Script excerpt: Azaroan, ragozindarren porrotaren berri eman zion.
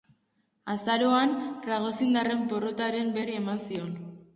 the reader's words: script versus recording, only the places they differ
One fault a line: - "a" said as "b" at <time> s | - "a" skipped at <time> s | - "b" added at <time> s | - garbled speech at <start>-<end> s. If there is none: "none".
none